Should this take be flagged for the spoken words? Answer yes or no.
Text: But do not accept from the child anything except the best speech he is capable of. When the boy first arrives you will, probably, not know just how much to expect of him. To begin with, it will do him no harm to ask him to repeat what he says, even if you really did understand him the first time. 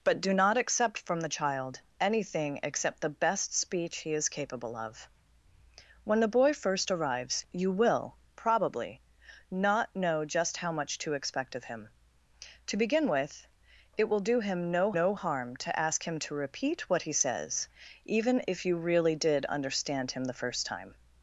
yes